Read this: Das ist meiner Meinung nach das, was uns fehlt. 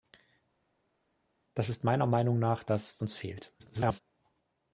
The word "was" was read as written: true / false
false